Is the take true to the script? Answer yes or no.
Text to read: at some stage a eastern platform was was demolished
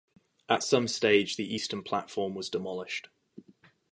no